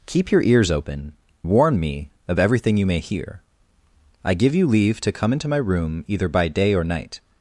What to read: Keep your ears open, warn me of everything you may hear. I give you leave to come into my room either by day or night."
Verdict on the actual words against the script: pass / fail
pass